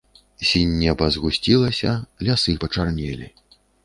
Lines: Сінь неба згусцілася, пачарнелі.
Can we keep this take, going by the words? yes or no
no